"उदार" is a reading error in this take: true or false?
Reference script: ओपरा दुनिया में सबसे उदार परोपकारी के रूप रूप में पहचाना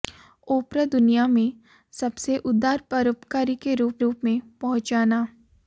false